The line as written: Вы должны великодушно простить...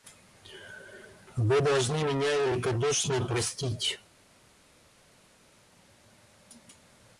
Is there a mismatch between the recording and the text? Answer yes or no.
yes